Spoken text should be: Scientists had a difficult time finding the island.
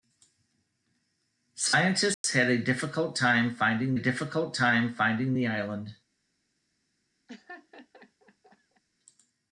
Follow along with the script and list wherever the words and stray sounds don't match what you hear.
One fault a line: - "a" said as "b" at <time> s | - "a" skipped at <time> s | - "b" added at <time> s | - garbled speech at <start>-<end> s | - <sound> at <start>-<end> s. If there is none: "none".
- dropout at 2.1-2.2 s
- "difficult time finding" added at 4.0 s
- laugh at 7.3-8.8 s